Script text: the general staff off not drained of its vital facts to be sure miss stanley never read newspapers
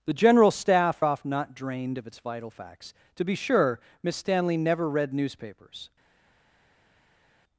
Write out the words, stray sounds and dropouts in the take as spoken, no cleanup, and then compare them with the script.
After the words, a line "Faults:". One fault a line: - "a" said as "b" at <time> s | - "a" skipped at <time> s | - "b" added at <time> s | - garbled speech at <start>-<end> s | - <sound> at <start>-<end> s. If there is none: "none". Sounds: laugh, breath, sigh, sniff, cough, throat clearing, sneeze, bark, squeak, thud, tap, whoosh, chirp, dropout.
the general staff off not drained of its vital facts to be sure miss stanley never read newspapers
Faults:
none